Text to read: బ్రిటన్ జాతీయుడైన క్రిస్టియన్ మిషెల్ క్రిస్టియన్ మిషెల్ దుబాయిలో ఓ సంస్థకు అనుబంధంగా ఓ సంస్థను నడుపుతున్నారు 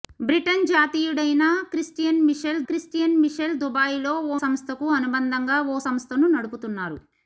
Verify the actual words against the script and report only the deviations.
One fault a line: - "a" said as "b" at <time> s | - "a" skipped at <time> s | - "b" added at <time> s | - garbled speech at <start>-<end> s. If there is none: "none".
none